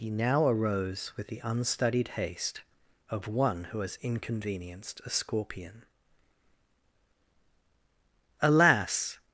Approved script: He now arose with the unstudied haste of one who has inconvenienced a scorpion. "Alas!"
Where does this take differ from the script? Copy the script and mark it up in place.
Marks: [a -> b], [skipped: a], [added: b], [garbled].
He now arose with the unstudied haste of one who has inconvenienced a scorpion. "Alas!"